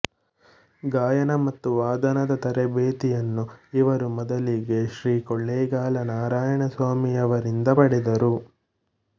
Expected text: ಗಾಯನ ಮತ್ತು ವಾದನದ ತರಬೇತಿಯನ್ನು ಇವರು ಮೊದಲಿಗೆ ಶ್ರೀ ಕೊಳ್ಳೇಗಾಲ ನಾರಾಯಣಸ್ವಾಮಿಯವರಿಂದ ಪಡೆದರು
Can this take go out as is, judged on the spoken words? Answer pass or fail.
pass